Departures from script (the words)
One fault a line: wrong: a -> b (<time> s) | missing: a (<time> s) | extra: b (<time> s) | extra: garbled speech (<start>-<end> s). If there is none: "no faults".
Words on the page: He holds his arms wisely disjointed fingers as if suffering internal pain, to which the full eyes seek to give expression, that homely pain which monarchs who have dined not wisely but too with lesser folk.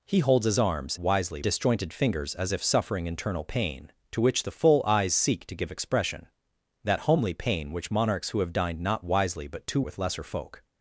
no faults